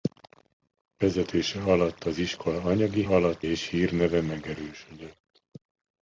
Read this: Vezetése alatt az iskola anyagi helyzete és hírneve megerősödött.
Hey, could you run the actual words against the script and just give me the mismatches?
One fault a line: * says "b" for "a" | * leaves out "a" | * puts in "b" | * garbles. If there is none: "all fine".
* says "alatt" for "helyzete"